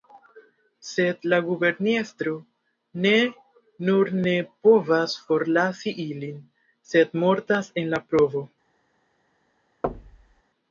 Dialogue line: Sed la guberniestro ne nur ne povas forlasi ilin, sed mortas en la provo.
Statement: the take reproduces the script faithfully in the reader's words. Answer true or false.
true